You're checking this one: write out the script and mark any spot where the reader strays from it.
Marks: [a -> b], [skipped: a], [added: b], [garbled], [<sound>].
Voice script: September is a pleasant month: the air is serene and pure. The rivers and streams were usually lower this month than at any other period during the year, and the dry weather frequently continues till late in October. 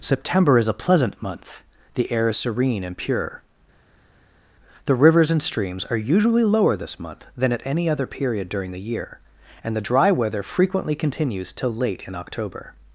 September is a pleasant month: the air is serene and pure. The rivers and streams [were -> are] usually lower this month than at any other period during the year, and the dry weather frequently continues till late in October.